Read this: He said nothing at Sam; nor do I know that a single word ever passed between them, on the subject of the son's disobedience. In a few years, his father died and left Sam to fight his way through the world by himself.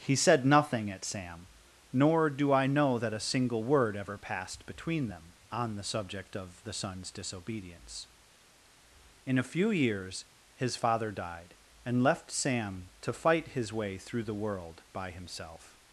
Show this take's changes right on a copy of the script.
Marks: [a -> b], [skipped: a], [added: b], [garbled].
He said nothing at Sam; nor do I know that a single word ever passed between them, on the subject of the son's disobedience. In a few years, his father died and left Sam to fight his way through the world by himself.